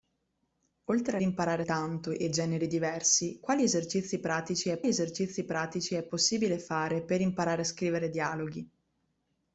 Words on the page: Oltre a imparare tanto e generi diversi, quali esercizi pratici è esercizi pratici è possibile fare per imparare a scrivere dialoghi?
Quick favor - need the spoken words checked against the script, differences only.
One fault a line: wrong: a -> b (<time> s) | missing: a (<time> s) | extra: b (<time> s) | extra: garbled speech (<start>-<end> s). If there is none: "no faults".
no faults